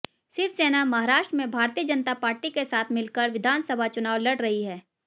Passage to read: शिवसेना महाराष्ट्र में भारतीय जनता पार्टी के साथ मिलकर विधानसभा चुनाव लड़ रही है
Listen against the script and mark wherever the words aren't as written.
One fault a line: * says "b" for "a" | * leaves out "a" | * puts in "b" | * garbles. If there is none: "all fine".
all fine